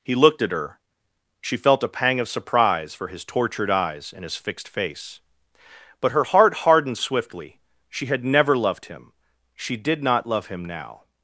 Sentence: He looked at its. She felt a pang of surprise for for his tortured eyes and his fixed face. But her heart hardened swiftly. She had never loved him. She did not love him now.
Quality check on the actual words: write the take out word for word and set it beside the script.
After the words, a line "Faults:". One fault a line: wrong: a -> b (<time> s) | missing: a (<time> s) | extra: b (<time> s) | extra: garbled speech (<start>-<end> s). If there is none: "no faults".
He looked at her. She felt a pang of surprise for his tortured eyes and his fixed face. But her heart hardened swiftly. She had never loved him. She did not love him now.
Faults:
wrong: its -> her (0.5 s)
missing: for (3.1 s)